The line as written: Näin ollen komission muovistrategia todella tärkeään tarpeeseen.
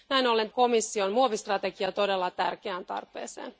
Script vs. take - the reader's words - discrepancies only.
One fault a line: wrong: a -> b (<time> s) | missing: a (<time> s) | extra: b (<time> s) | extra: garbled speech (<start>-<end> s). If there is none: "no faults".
no faults